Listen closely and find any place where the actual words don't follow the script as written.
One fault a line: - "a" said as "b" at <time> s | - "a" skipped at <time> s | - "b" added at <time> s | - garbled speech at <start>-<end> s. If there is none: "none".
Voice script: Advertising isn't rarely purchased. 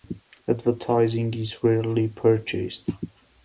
- "isn't" said as "is" at 1.4 s